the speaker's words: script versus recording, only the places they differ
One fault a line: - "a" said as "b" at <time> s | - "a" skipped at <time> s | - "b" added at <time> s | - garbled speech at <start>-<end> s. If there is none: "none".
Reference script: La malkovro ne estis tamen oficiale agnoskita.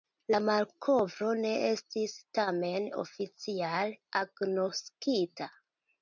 none